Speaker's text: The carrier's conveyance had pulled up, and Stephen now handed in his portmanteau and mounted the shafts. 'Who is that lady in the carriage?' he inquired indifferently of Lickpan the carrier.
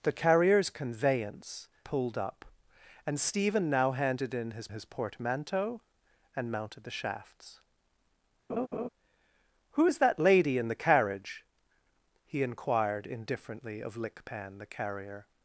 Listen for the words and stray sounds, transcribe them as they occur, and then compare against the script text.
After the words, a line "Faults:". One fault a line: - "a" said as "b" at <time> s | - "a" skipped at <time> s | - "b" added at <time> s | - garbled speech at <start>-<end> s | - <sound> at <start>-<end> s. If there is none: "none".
The carrier's conveyance pulled up, and Stephen now handed in his his portmanteau and mounted the shafts. 'Who is that lady in the carriage?' he inquired indifferently of Lickpan the carrier.
Faults:
- "had" skipped at 1.7 s
- "his" added at 4.7 s
- laugh at 8.5-8.9 s